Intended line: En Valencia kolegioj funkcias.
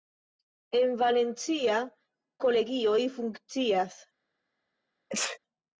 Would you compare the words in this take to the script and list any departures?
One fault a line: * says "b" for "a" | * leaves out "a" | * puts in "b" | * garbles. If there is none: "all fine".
all fine